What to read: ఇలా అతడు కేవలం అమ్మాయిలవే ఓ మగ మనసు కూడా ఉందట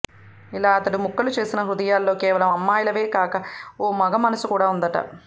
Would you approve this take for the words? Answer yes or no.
no